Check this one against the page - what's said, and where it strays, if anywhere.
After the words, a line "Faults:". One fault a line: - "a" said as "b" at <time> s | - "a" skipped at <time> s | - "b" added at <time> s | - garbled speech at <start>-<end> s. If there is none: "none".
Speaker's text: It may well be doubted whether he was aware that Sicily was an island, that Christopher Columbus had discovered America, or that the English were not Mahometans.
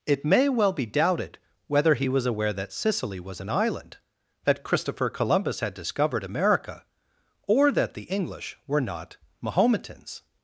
It may well be doubted whether he was aware that Sicily was an island, that Christopher Columbus had discovered America, or that the English were not Mahometans.
Faults:
none